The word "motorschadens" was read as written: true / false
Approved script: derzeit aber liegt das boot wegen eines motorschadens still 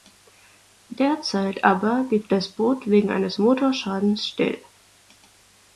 true